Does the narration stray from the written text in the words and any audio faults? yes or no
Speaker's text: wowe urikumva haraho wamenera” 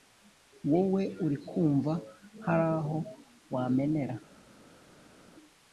no